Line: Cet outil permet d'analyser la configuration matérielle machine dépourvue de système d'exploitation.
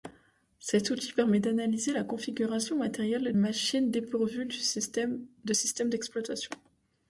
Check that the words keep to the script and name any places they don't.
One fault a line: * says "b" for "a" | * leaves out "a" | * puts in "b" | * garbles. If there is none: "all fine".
all fine